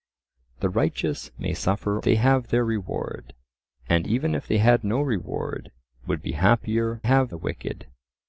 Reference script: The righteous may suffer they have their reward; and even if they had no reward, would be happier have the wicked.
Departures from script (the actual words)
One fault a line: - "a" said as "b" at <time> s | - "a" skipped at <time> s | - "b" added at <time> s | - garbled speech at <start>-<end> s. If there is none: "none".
none